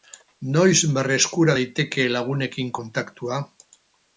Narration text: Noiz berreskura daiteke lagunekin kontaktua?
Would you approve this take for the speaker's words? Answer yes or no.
yes